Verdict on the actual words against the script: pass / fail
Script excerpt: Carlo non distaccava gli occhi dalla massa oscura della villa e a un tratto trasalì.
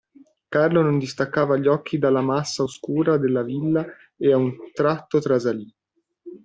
pass